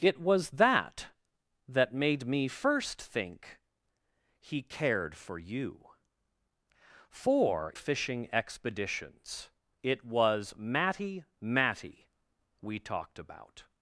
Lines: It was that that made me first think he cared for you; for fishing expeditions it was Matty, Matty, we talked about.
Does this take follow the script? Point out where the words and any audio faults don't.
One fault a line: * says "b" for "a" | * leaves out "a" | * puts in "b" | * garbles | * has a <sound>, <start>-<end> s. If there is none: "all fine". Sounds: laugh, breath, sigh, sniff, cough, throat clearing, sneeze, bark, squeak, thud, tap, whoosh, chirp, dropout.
all fine